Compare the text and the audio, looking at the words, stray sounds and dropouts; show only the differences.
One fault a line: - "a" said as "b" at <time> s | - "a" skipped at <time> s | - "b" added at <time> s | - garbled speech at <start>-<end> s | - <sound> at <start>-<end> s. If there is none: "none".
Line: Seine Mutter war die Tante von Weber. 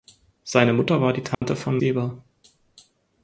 - dropout at 1.3-1.4 s